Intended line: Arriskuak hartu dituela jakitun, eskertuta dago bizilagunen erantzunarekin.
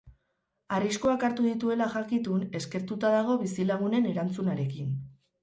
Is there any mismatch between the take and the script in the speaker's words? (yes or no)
no